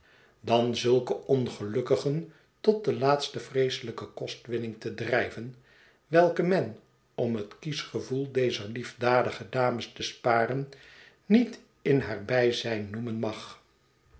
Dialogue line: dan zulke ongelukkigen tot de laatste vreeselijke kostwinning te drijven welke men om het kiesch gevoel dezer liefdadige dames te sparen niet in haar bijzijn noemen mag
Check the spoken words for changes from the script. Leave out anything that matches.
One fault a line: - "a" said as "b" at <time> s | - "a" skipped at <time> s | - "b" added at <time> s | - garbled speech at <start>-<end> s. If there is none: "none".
none